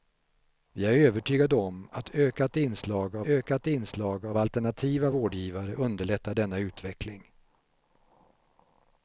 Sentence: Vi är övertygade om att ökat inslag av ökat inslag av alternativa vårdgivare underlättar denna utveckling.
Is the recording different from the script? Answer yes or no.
no